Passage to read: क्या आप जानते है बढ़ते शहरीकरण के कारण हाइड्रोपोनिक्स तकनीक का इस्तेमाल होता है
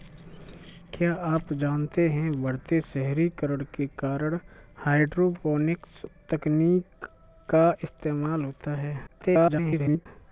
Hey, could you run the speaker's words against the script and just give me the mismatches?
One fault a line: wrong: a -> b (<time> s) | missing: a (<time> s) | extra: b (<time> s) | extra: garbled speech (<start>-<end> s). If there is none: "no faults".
extra: garbled speech (9.1-10.1 s)